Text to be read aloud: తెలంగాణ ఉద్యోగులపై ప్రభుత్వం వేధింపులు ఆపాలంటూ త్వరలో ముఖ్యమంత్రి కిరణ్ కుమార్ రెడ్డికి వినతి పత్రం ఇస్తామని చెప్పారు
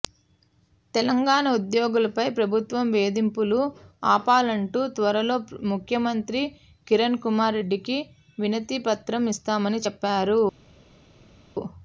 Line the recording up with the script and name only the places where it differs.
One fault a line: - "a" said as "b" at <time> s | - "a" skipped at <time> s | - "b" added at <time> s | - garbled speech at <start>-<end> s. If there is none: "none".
none